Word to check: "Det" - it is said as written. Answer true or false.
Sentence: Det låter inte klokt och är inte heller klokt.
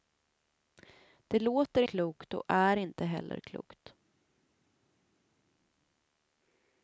true